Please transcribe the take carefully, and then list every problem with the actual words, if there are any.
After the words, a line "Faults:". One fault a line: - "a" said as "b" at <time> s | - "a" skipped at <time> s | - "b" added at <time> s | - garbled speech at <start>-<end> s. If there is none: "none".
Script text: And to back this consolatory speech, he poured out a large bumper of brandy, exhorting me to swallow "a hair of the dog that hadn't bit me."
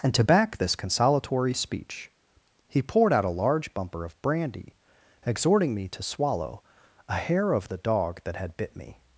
And to back this consolatory speech, he poured out a large bumper of brandy, exhorting me to swallow "a hair of the dog that had bit me."
Faults:
- "hadn't" said as "had" at 8.4 s